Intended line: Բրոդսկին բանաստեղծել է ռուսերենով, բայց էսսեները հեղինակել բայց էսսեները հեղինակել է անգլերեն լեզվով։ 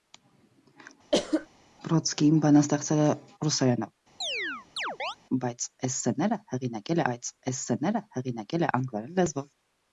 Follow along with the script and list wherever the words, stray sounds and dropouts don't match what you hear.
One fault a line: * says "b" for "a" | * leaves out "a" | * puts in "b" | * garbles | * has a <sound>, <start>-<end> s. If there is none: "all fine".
* has a cough, 1.1-1.5 s
* has a chirp, 4.2-5.2 s